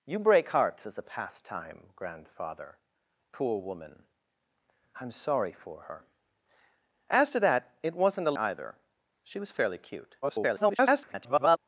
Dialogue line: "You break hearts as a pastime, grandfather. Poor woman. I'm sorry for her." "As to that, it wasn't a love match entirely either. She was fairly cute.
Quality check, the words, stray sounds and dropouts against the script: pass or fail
fail